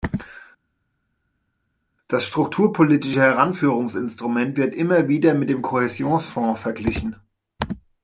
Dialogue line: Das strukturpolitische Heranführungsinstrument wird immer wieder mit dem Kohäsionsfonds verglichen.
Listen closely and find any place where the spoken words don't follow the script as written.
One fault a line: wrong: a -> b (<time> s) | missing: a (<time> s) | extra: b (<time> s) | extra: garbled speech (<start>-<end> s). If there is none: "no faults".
no faults